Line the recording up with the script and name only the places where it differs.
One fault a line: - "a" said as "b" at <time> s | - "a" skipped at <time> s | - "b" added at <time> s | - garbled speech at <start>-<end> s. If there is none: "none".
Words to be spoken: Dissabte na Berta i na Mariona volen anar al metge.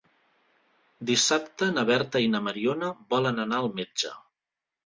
none